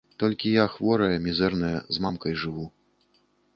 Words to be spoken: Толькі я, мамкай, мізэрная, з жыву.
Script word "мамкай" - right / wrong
wrong